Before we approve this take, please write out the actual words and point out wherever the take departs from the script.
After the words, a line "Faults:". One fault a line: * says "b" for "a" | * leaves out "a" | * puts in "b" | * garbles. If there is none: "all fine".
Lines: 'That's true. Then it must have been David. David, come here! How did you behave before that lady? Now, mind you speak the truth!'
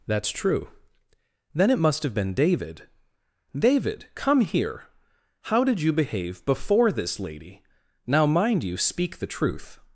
'That's true. Then it must have been David. David, come here! How did you behave before this lady? Now, mind you speak the truth!'
Faults:
* says "this" for "that"